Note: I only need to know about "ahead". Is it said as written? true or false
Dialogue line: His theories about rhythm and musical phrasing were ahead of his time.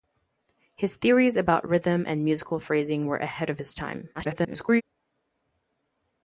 true